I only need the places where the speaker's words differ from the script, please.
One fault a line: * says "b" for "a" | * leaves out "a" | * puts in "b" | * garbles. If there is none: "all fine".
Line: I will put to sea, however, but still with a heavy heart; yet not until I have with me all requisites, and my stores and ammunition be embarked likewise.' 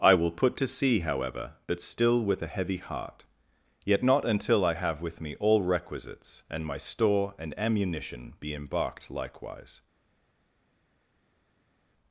* says "store" for "stores"